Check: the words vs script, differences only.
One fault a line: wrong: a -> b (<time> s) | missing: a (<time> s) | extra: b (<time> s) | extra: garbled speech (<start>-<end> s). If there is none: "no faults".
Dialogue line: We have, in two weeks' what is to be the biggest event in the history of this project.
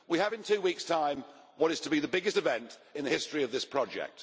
extra: time (0.8 s)